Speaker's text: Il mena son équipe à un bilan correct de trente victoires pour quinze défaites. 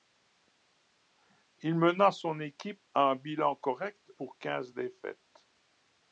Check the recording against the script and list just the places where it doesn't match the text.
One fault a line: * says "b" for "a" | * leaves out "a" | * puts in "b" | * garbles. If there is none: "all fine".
* leaves out "de trente victoires"